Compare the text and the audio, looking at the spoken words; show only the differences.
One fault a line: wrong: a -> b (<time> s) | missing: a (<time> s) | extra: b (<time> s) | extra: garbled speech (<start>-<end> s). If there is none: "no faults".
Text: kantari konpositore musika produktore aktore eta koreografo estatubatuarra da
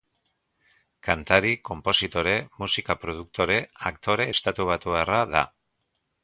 missing: eta koreografo (4.3 s)